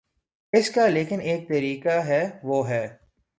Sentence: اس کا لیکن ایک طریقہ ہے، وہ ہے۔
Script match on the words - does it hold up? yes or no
yes